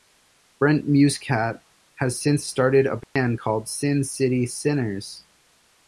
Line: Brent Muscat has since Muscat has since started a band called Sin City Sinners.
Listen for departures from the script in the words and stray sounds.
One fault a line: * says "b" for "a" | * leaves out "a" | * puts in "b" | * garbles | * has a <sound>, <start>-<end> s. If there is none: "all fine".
* leaves out "Muscat has since"
* has a dropout, 3.0-3.2 s